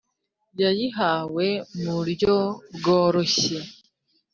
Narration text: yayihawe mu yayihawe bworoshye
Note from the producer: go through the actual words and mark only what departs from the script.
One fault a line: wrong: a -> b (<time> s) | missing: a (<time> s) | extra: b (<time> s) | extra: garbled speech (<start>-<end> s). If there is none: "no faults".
wrong: yayihawe -> buryo (2.0 s)